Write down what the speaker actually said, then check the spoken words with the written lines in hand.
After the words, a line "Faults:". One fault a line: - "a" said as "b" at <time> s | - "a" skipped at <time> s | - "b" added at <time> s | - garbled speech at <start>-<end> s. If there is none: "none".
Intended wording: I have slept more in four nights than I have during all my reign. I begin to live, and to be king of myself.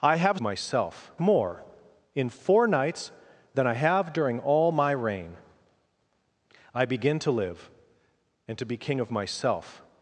I have myself more in four nights than I have during all my reign. I begin to live, and to be king of myself.
Faults:
- "slept" said as "myself" at 0.4 s